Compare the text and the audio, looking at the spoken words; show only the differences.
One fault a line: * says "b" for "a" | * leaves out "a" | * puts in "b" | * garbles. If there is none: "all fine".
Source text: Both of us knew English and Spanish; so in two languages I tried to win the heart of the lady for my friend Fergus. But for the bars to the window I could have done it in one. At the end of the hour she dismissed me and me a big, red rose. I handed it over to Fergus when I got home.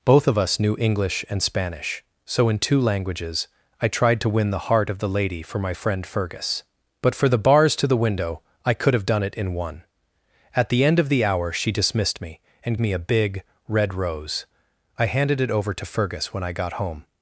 all fine